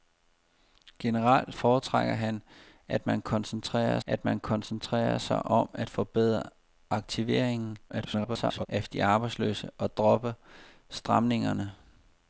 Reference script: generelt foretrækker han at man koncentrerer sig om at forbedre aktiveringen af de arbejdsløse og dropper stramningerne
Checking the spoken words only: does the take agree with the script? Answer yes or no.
no